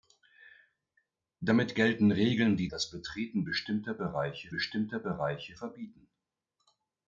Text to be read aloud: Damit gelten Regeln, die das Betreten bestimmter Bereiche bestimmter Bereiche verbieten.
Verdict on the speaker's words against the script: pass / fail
pass